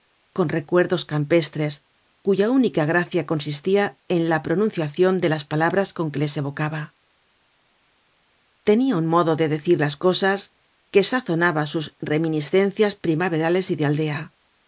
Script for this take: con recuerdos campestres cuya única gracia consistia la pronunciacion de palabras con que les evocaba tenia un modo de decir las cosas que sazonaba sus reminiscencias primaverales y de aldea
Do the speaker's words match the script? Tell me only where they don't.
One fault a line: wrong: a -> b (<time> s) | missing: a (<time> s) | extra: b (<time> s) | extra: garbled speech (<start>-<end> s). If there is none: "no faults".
extra: en (4.2 s)
extra: las (5.3 s)